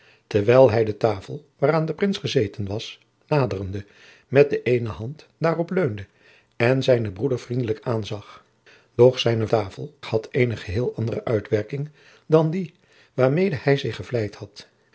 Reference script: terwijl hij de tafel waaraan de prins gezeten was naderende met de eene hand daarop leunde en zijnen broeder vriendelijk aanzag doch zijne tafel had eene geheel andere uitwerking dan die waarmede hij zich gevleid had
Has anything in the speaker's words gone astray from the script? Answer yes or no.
no